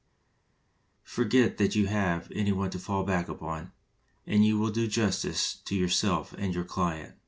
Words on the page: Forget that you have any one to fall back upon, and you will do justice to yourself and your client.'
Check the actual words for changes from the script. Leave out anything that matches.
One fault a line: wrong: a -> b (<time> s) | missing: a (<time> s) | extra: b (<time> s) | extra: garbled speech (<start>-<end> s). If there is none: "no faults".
no faults